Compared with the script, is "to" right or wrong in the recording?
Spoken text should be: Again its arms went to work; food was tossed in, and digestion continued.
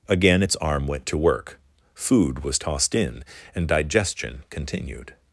right